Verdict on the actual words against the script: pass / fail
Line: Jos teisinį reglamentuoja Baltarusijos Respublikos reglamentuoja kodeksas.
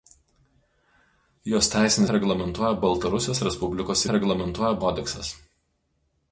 pass